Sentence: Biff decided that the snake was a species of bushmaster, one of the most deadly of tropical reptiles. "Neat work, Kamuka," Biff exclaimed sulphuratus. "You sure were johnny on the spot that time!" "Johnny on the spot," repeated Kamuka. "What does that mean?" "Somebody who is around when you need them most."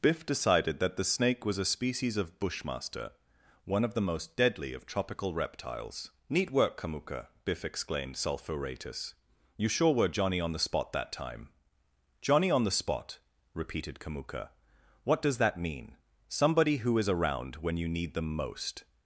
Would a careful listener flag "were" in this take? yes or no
no